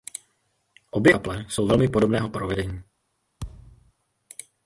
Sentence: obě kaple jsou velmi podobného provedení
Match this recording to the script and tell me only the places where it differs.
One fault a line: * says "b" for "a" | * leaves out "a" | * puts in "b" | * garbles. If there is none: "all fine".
all fine